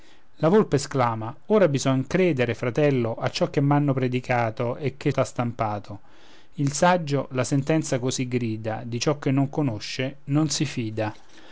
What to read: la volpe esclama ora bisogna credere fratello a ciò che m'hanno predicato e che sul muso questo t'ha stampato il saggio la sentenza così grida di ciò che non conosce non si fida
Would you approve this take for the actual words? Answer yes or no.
no